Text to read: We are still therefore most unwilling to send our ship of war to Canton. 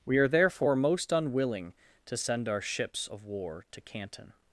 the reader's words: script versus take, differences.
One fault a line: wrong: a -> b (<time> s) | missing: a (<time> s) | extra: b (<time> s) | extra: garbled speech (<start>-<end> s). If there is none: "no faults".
missing: still (0.3 s)
wrong: ship -> ships (2.6 s)